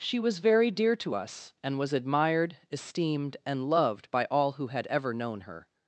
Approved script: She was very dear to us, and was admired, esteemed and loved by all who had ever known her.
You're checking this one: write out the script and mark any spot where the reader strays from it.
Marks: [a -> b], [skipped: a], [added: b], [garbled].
She was very dear to us, and was admired, esteemed and loved by all who had ever known her.